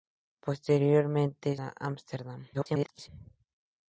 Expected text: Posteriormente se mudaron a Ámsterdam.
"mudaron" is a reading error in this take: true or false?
true